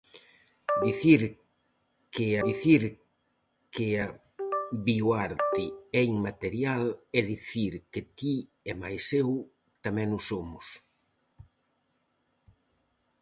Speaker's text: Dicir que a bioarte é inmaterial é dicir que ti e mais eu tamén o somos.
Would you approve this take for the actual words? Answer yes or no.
no